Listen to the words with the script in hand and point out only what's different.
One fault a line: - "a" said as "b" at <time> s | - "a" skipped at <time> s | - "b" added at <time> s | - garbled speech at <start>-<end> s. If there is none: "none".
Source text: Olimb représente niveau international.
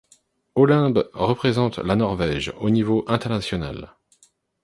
- "la Norvège au" added at 1.8 s